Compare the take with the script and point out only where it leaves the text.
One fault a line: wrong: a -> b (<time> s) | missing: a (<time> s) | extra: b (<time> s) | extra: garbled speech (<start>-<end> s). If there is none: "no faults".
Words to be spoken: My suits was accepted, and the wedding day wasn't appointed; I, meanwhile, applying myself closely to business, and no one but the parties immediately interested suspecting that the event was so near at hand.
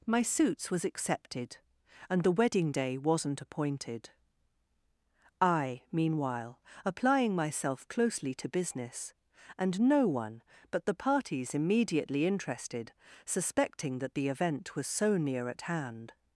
no faults